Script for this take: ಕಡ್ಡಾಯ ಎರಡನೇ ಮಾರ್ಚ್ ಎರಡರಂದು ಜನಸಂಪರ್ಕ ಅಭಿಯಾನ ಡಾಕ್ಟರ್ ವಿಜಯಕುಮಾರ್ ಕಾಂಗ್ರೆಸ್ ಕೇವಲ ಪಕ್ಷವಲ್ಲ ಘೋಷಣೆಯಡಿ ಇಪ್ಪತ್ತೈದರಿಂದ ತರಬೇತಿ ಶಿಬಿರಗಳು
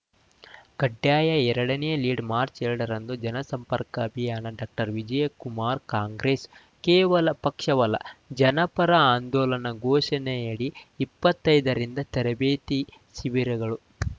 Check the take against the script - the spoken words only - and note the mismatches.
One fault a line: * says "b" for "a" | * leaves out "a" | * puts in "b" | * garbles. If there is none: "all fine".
* puts in "ಲೀಡ್"
* puts in "ಜನಪರ ಆಂದೋಲನ"